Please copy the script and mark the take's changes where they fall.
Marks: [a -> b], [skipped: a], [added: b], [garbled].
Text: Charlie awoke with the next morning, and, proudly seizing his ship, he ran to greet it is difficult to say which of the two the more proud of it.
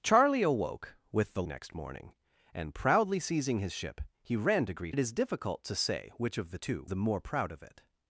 Charlie awoke with the next morning, and, proudly seizing his ship, he ran to greet it is difficult to say which of the two the more proud of it.